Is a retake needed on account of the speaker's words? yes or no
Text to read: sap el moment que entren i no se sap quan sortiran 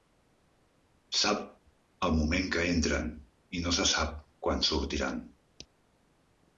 no